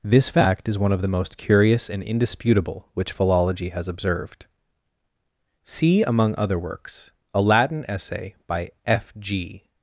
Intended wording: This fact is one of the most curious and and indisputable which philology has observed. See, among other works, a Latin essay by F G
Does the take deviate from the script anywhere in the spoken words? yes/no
yes